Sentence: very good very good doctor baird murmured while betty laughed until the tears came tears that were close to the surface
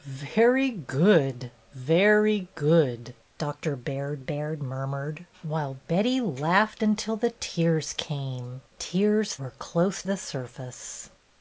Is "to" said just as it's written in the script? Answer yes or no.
no